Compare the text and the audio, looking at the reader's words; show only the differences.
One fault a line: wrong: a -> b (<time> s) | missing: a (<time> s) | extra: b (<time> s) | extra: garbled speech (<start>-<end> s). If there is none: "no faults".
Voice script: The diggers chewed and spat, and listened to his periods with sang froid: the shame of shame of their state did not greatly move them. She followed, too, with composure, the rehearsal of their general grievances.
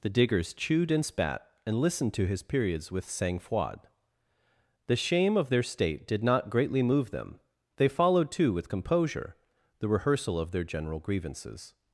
missing: shame of (5.5 s)
wrong: She -> They (7.8 s)